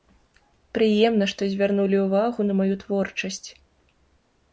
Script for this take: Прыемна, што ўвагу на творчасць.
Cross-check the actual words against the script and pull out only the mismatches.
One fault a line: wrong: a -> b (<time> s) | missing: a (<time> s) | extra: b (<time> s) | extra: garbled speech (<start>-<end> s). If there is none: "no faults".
extra: звярнулі (1.5 s)
extra: маю (2.6 s)